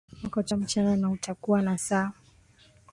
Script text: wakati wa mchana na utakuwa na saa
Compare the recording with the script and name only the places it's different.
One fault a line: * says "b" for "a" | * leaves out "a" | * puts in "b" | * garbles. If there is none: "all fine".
all fine